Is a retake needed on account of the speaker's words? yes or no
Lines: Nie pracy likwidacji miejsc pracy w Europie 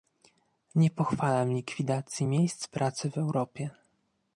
yes